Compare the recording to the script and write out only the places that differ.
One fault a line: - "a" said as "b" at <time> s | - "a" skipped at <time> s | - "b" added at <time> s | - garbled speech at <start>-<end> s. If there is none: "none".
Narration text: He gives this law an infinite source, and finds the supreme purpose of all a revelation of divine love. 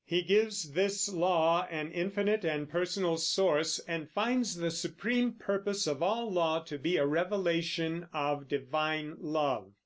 - "and personal" added at 2.4 s
- "law to be" added at 6.3 s